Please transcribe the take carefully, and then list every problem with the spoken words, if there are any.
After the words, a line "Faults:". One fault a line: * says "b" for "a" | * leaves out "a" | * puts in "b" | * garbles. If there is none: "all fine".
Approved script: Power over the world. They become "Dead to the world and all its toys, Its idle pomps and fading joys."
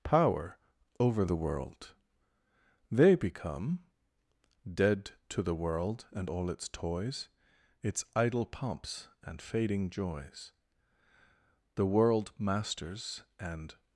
Power over the world. They become "Dead to the world and all its toys, Its idle pomps and fading joys." The world masters and
Faults:
* puts in "The world masters and"